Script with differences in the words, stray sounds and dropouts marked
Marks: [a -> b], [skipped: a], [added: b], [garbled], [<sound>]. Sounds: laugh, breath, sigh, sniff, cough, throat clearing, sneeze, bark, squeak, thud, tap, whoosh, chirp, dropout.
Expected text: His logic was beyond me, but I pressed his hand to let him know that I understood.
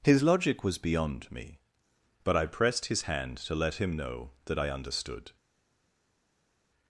His logic was beyond me, but I pressed his hand to let him know that I understood.